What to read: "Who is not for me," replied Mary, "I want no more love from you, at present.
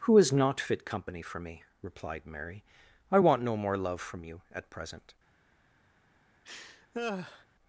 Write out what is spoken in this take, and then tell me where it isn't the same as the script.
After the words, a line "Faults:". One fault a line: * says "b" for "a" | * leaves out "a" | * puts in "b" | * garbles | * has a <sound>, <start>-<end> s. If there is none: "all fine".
"Who is not fit company for me," replied Mary, "I want no more love from you, at present.
Faults:
* puts in "fit company"
* has a laugh, 6.4-7.5 s